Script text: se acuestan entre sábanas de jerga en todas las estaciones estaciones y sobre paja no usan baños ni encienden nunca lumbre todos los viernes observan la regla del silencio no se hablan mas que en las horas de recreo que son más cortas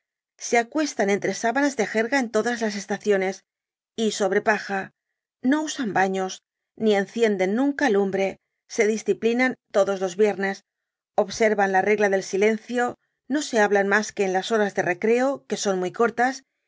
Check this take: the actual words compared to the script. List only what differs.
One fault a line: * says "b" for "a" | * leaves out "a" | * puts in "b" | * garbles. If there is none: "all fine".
* leaves out "estaciones"
* puts in "se disciplinan"
* says "muy" for "más"